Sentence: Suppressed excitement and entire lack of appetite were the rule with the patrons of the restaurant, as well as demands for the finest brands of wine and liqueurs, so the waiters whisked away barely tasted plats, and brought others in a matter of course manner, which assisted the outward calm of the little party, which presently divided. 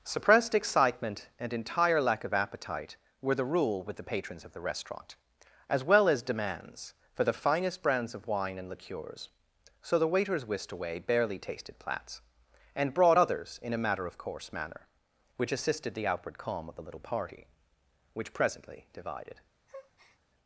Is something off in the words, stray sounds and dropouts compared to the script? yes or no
yes